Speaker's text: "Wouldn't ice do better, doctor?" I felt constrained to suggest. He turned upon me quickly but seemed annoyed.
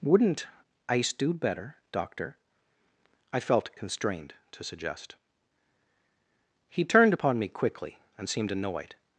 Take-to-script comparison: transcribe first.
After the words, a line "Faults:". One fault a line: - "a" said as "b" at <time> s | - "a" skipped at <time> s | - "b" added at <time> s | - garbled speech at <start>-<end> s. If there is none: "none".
"Wouldn't ice do better, doctor?" I felt constrained to suggest. He turned upon me quickly and seemed annoyed.
Faults:
- "but" said as "and" at 8.2 s